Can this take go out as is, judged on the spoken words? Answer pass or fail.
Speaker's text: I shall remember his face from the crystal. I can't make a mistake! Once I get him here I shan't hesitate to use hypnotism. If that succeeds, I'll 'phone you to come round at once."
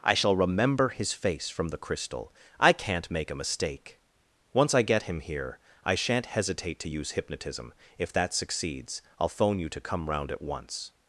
pass